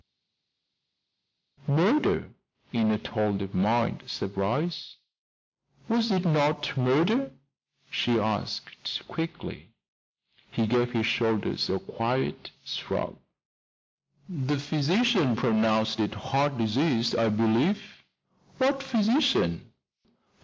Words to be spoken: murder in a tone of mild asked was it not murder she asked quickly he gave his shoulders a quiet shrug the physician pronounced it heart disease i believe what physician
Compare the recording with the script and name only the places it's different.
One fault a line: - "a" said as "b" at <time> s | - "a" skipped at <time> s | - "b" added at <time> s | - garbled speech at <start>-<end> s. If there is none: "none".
- "asked" said as "surprise" at 4.1 s